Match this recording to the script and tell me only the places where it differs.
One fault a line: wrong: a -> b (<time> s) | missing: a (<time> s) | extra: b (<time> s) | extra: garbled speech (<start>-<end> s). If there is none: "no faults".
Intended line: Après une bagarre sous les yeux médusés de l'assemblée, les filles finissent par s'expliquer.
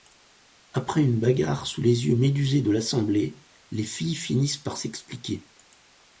no faults